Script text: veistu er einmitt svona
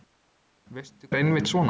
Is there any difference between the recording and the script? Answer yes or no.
no